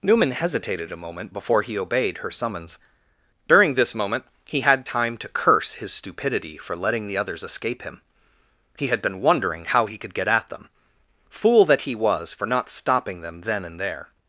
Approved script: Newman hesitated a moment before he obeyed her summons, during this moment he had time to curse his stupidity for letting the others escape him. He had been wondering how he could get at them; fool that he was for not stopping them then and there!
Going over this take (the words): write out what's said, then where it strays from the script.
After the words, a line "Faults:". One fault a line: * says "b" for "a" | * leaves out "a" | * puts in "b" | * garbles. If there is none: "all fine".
Newman hesitated a moment before he obeyed her summons, during this moment he had time to curse his stupidity for letting the others escape him. He had been wondering how he could get at them; fool that he was for not stopping them then and there!
Faults:
all fine